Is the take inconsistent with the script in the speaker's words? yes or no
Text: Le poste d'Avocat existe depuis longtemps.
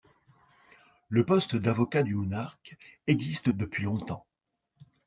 yes